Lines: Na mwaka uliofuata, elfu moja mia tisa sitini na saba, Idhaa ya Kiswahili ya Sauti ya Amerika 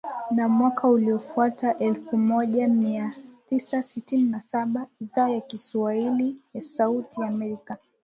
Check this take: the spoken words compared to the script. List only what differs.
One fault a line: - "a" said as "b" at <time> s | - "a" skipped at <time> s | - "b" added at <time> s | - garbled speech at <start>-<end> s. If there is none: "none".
none